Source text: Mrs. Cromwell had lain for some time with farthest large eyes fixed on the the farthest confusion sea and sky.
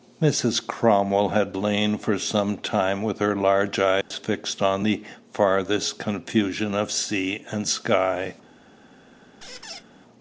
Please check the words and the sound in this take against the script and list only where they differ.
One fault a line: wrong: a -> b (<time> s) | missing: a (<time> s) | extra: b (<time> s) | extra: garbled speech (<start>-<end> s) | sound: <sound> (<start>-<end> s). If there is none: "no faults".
wrong: farthest -> her (3.2 s)
sound: dropout (4.0-4.1 s)
missing: the (5.0 s)
extra: of (6.8 s)
sound: squeak (9.4-9.8 s)